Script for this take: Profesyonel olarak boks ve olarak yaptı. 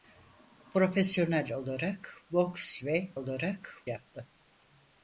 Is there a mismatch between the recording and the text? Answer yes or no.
no